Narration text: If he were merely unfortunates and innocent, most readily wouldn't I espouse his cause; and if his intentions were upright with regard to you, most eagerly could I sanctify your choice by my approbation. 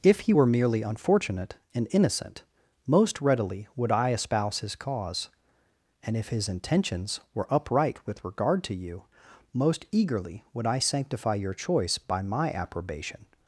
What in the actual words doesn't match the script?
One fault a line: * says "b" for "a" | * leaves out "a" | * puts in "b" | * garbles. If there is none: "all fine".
* says "unfortunate" for "unfortunates"
* says "would" for "wouldn't"
* says "would" for "could"